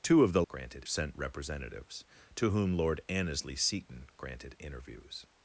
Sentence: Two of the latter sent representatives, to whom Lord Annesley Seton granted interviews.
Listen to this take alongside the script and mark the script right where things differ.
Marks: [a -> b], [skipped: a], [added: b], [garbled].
Two of the [latter -> granted] sent representatives, to whom Lord Annesley Seton granted interviews.